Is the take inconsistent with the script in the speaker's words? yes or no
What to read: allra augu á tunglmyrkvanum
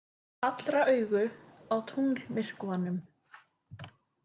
no